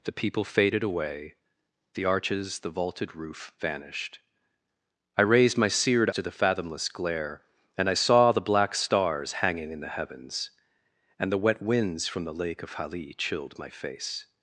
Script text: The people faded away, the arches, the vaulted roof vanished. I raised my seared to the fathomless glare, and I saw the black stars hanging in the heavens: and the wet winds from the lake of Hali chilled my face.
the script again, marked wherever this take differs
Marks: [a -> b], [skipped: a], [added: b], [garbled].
The people faded away, the arches, the vaulted roof vanished. I raised my seared to the fathomless glare, and I saw the black stars hanging in the heavens: and the wet winds from the lake of Hali chilled my face.